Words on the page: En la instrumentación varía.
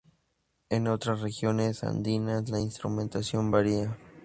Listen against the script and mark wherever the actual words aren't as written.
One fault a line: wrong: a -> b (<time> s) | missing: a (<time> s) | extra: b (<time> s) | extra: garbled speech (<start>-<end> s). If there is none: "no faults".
extra: otras regiones andinas (0.9 s)